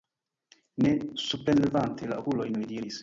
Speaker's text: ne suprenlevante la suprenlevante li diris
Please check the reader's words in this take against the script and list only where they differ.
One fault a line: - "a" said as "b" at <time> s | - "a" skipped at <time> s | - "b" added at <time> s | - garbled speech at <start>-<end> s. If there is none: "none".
- "suprenlevante" said as "okulojn" at 2.2 s